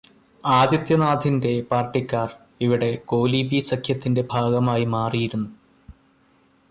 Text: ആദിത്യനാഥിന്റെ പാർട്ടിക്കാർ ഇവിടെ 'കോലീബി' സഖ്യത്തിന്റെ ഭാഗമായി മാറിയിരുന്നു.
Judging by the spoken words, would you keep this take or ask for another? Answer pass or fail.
pass